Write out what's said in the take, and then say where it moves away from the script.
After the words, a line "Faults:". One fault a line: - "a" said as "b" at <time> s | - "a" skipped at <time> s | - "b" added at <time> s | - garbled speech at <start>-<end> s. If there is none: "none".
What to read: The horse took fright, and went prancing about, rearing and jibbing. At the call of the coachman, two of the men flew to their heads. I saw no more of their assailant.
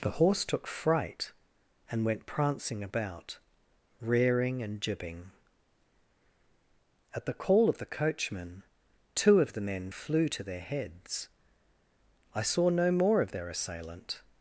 The horse took fright, and went prancing about, rearing and jibbing. At the call of the coachman, two of the men flew to their heads. I saw no more of their assailant.
Faults:
none